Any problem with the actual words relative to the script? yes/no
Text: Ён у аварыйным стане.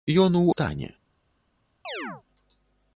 yes